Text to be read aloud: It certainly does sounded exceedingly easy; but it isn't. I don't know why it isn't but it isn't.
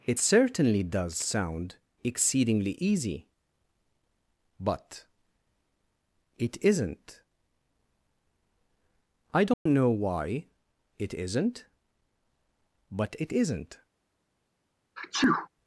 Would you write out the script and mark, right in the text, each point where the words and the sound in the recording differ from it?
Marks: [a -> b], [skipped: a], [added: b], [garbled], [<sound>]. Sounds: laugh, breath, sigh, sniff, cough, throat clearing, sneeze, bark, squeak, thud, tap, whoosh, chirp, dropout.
It certainly does [sounded -> sound] exceedingly easy; but it isn't. I don't [dropout] know why it isn't but it isn't. [sneeze]